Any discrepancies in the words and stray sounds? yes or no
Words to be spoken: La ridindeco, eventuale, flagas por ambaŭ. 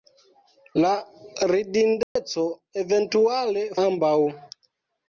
yes